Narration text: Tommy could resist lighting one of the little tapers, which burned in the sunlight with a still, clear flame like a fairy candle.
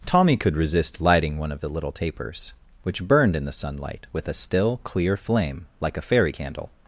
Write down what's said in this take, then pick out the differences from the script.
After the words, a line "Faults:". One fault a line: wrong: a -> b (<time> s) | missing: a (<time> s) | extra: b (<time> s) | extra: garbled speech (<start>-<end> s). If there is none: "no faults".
Tommy could resist lighting one of the little tapers, which burned in the sunlight with a still, clear flame like a fairy candle.
Faults:
no faults